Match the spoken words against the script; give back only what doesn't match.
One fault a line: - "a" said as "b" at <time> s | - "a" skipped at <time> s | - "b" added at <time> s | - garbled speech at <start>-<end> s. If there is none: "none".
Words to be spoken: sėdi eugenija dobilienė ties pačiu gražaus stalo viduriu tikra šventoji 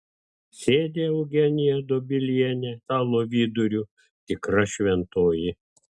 - "ties pačiu gražaus" skipped at 2.7 s